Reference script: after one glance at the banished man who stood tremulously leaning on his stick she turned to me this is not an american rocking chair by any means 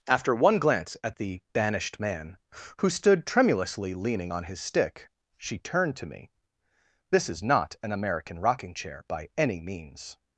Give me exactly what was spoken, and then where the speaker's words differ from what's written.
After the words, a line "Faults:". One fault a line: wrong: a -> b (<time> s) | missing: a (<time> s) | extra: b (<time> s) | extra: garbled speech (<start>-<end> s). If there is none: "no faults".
after one glance at the banished man who stood tremulously leaning on his stick she turned to me this is not an american rocking chair by any means
Faults:
no faults